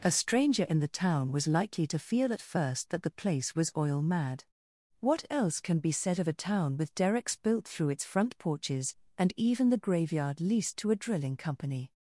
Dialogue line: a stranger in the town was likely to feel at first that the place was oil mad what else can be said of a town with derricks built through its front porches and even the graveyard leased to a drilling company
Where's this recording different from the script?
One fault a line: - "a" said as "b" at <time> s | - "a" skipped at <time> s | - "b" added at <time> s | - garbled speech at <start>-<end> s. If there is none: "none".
none